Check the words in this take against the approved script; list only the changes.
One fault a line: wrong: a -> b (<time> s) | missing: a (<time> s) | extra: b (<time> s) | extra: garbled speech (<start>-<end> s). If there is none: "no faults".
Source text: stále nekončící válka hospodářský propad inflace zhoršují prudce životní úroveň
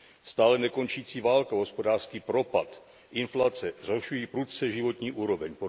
no faults